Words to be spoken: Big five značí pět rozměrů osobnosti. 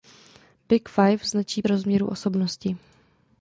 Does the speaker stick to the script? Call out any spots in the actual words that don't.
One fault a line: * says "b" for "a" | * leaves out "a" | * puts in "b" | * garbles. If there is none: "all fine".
* leaves out "pět"